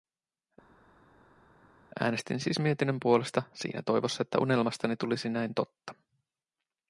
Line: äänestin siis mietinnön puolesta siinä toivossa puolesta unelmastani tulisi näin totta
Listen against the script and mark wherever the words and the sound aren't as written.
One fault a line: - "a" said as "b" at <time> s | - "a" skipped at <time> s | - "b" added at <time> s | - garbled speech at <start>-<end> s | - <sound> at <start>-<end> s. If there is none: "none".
- "puolesta" said as "että" at 4.2 s